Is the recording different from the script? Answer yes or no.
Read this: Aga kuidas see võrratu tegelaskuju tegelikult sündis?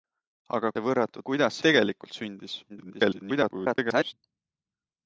yes